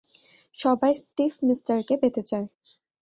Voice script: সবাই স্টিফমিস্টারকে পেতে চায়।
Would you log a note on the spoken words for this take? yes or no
no